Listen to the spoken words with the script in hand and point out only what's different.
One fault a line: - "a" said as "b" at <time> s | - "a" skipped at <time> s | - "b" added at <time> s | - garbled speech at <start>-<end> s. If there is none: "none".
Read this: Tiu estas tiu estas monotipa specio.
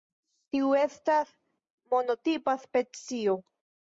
- "tiu estas" skipped at 1.3 s